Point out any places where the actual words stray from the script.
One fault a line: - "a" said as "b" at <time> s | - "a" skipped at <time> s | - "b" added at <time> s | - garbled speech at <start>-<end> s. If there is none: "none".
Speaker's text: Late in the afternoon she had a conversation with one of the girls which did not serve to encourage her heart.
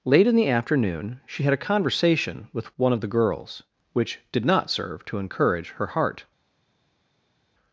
none